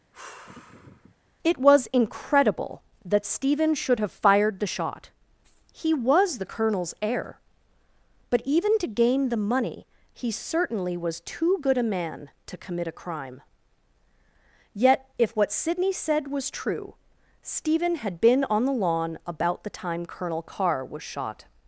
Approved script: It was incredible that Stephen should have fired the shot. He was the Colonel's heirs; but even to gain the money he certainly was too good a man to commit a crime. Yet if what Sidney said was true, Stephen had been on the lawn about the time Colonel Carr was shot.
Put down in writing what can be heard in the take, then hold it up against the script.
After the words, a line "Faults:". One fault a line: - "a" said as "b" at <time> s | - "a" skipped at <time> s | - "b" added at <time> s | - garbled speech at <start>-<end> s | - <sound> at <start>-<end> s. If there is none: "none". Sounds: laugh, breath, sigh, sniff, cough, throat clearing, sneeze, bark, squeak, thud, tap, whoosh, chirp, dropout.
It was incredible that Stephen should have fired the shot. He was the Colonel's heir; but even to gain the money he certainly was too good a man to commit a crime. Yet if what Sidney said was true, Stephen had been on the lawn about the time Colonel Carr was shot.
Faults:
- sigh at 0.1-1.1 s
- "heirs" said as "heir" at 7.0 s